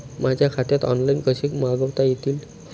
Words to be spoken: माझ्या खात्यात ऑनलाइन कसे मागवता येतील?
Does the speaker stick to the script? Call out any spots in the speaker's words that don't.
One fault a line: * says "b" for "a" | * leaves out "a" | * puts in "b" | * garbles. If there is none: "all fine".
all fine